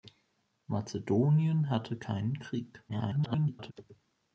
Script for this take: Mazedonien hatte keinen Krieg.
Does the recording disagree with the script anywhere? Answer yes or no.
yes